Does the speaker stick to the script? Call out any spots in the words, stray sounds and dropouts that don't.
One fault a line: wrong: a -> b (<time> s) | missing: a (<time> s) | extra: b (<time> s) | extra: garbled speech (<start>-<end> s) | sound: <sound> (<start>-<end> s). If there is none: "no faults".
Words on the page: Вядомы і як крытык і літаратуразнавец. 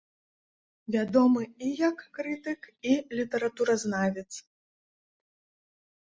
no faults